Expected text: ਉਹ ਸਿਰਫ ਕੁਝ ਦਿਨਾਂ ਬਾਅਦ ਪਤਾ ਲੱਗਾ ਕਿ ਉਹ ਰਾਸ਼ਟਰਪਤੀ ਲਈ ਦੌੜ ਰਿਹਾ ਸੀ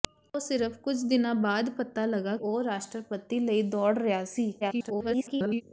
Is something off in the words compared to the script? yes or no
yes